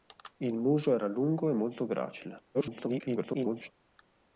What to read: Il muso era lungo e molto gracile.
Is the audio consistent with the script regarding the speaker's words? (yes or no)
no